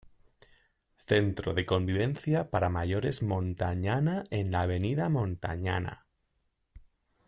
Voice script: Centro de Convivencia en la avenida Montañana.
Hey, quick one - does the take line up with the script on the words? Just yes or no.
no